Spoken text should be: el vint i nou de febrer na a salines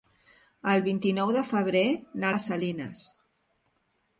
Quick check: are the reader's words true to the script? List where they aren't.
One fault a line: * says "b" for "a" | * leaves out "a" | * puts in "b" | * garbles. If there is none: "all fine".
all fine